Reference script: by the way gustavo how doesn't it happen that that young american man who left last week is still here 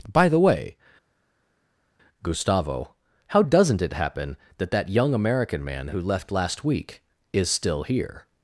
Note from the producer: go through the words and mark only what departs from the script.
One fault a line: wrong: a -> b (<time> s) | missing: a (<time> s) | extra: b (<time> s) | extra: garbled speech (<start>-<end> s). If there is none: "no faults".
no faults